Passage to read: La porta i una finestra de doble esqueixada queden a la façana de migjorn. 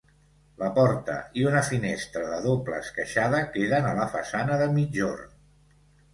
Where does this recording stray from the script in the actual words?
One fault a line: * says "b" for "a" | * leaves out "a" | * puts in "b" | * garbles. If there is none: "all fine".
all fine